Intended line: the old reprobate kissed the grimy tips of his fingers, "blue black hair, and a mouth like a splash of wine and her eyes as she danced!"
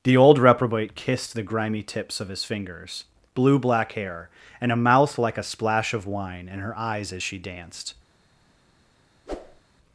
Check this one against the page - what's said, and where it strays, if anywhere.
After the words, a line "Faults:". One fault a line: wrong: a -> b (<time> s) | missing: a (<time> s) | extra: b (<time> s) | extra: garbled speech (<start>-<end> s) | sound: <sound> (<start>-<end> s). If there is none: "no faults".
the old reprobate kissed the grimy tips of his fingers, "blue black hair, and a mouth like a splash of wine and her eyes as she danced!"
Faults:
sound: whoosh (9.3-9.6 s)